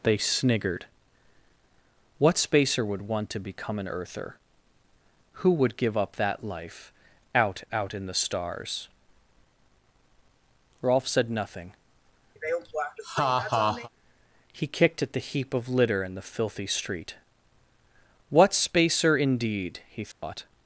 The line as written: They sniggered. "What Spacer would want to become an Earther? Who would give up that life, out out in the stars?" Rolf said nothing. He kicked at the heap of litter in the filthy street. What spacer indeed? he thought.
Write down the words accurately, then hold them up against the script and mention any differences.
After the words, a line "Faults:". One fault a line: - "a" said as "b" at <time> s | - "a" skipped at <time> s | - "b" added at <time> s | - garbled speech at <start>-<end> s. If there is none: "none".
They sniggered. "What Spacer would want to become an Earther? Who would give up that life, out out in the stars?" Rolf said nothing. He kicked at the heap of litter in the filthy street. What spacer indeed? he thought.
Faults:
none